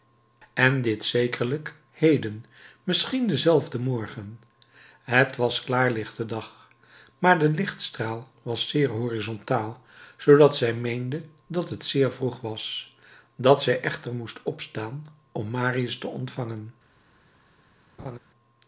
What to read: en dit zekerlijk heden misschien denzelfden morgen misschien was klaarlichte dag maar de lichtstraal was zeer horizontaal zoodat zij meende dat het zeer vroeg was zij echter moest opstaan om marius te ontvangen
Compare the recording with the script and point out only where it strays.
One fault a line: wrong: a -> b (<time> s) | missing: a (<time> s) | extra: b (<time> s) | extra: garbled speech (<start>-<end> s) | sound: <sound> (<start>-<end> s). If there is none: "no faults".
wrong: misschien -> het (5.0 s)
extra: dat (13.4 s)
sound: laugh (18.0-18.2 s)